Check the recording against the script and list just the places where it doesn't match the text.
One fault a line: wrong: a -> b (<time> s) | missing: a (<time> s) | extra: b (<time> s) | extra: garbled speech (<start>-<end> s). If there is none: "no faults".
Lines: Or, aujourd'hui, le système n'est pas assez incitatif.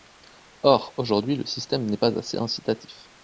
no faults